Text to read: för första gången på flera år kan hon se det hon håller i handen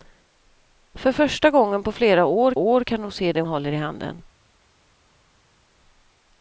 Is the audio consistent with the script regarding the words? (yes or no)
no